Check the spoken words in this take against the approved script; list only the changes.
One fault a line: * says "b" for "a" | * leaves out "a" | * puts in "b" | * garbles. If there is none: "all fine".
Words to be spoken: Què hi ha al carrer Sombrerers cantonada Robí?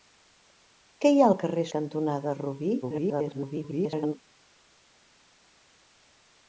* leaves out "Sombrerers"
* garbles